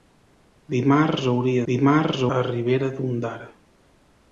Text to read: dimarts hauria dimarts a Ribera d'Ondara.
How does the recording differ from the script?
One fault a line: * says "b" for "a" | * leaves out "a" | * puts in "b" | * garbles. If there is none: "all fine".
all fine